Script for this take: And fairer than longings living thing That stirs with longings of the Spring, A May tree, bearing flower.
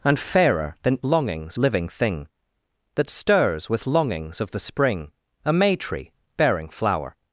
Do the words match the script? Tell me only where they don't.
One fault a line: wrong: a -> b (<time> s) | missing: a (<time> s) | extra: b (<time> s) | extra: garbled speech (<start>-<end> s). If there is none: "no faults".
no faults